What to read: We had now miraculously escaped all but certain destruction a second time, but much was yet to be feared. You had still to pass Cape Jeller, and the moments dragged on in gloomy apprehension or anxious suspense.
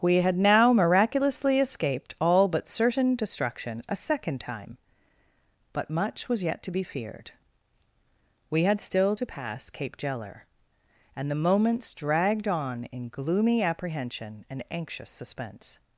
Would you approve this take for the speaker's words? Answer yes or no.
no